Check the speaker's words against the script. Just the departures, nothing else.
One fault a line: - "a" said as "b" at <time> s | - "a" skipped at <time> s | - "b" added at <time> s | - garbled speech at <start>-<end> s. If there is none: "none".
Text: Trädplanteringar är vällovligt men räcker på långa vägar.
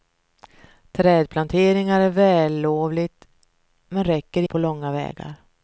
none